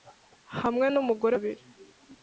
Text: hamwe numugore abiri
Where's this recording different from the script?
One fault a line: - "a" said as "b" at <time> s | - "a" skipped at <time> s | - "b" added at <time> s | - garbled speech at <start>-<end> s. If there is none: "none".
none